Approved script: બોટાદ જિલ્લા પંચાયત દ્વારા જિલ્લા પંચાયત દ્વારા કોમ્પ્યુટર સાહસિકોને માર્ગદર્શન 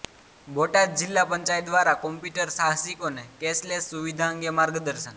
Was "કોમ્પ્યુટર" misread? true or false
true